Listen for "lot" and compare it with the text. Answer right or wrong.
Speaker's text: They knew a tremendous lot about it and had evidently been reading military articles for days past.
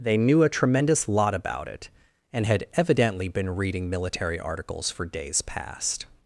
right